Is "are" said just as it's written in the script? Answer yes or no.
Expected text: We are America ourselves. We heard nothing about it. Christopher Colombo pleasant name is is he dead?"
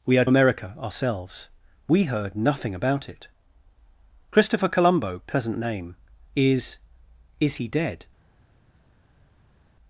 yes